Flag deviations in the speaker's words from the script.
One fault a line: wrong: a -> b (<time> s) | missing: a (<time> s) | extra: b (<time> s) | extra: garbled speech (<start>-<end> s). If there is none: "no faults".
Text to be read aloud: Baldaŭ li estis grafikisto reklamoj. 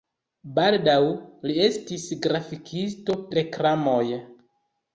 no faults